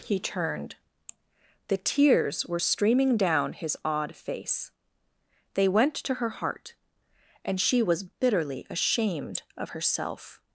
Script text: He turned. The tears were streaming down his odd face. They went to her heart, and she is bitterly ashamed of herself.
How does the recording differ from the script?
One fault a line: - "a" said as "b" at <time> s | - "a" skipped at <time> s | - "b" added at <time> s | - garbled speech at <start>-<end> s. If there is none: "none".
- "is" said as "was" at 7.8 s